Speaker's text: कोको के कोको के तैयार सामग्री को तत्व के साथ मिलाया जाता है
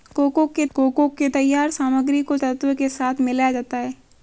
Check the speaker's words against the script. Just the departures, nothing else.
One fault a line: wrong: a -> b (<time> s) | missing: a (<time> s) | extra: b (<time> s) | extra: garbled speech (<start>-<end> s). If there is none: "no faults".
no faults